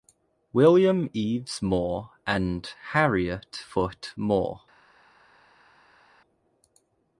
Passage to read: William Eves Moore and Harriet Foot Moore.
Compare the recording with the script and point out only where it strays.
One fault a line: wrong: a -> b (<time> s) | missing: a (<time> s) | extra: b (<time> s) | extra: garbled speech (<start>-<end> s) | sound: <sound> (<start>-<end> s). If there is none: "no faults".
no faults